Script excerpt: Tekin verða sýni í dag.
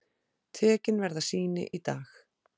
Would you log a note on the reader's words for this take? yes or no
no